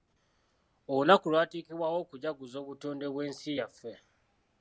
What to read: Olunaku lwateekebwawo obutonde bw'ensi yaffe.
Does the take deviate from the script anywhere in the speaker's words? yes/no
yes